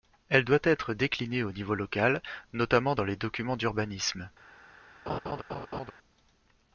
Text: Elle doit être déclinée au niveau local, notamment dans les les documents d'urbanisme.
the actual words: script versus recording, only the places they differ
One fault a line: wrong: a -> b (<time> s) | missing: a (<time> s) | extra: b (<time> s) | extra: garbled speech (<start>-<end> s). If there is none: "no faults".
missing: les (3.2 s)